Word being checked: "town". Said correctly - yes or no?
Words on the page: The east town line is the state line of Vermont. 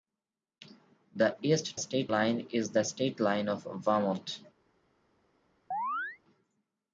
no